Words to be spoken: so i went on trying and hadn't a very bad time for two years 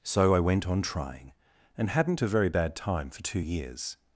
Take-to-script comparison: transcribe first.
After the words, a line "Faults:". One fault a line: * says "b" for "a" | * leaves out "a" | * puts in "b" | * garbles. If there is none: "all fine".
so i went on trying and hadn't a very bad time for two years
Faults:
all fine